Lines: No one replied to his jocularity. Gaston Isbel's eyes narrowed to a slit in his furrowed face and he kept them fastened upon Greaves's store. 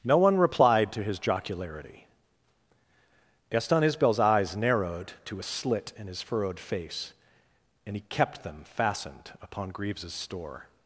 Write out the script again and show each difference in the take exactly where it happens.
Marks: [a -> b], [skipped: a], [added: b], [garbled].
No one replied to his jocularity. Gaston Isbel's eyes narrowed to a slit in his furrowed face and he kept them fastened upon Greaves's store.